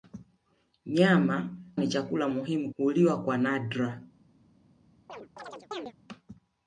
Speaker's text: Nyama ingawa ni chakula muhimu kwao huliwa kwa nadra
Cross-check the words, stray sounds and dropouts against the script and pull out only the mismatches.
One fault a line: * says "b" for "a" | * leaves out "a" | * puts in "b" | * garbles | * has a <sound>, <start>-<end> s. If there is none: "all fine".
* leaves out "ingawa"
* leaves out "kwao"
* has a chirp, 5.1-5.9 s